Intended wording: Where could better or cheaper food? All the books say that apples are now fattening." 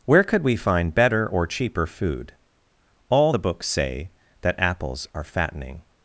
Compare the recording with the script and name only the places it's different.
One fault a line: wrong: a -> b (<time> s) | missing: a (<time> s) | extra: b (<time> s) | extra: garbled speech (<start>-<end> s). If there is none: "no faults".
extra: we find (0.4 s)
missing: now (5.2 s)